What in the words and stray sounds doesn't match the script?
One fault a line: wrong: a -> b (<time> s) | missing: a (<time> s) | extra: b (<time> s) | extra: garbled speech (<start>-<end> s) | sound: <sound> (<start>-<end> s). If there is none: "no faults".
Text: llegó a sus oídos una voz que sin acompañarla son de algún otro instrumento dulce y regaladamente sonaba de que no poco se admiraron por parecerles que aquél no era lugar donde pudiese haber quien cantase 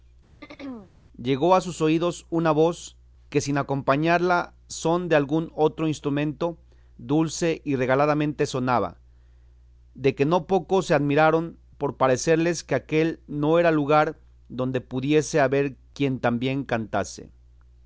sound: throat clearing (0.4-0.9 s)
extra: tan bien (16.2 s)